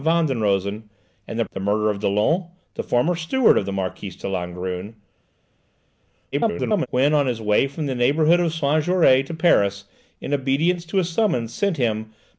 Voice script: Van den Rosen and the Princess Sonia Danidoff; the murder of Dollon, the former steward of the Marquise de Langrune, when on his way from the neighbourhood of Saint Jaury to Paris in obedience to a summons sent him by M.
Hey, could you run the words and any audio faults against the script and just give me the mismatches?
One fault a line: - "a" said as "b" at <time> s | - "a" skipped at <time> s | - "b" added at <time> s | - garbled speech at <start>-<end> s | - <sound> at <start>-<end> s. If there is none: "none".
- "Princess Sonia Danidoff" skipped at 1.4 s
- garbled speech at 6.3-6.9 s